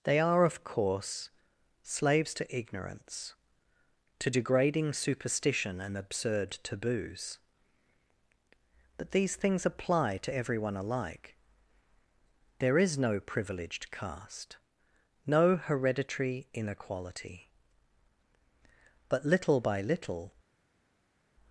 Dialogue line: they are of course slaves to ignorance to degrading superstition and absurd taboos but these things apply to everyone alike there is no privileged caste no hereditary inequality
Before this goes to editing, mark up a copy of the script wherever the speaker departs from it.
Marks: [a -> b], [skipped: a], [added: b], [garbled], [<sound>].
they are of course slaves to ignorance to degrading superstition and absurd taboos but these things apply to everyone alike there is no privileged caste no hereditary inequality [added: but little by little]